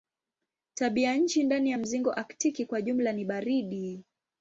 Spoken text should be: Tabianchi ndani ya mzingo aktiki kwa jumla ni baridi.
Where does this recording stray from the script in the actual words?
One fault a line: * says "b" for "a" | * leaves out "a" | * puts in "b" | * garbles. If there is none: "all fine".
all fine